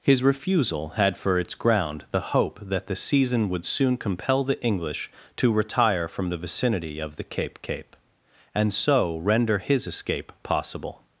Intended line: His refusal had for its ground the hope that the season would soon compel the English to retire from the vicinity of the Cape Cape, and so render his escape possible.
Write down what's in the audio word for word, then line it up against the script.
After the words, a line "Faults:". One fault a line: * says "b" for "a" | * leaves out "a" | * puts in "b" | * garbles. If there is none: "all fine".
His refusal had for its ground the hope that the season would soon compel the English to retire from the vicinity of the Cape Cape, and so render his escape possible.
Faults:
all fine